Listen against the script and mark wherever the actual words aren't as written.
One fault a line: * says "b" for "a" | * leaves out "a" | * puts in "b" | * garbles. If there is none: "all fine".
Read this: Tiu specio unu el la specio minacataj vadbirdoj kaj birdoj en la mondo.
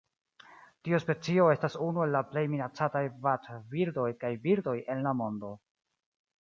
* puts in "estas"
* says "plej" for "specio"